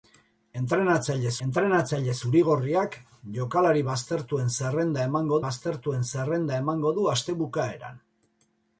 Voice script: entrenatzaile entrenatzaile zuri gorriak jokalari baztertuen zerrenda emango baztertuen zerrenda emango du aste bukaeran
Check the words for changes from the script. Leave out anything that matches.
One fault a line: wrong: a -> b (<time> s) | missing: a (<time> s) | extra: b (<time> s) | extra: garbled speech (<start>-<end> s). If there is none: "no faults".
no faults